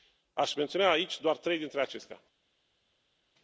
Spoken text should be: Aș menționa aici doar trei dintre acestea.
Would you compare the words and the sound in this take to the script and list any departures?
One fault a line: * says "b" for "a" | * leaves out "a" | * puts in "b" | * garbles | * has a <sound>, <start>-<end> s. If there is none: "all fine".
all fine